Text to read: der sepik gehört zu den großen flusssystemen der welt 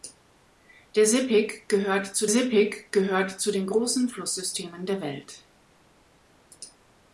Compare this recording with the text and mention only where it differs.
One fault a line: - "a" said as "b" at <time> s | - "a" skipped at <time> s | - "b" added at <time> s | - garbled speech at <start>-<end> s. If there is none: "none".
- "sepik gehört zu" added at 2.3 s